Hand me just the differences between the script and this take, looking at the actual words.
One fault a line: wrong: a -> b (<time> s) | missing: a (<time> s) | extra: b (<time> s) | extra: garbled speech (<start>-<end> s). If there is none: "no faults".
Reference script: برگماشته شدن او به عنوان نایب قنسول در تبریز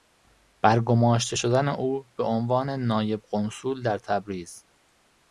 no faults